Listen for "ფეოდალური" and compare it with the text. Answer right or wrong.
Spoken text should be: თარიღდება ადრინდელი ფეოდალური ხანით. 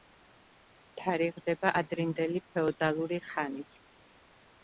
right